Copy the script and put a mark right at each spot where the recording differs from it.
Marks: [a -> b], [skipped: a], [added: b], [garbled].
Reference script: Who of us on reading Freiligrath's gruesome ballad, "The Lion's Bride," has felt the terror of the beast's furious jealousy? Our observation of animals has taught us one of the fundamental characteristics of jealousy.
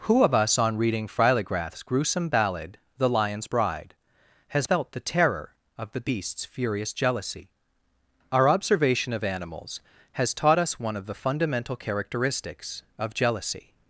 Who of us on reading Freiligrath's gruesome ballad, "The Lion's Bride," has felt the terror of the beast's furious jealousy? Our observation of animals has taught us one of the fundamental characteristics of jealousy.